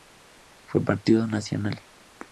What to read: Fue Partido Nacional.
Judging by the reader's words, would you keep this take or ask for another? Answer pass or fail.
pass